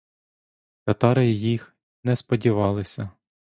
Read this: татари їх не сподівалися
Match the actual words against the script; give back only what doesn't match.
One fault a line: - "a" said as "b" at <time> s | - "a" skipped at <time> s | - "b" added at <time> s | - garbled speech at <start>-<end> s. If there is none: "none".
none